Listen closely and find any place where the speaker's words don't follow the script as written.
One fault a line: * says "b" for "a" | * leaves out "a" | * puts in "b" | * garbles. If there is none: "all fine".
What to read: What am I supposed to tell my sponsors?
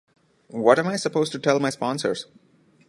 all fine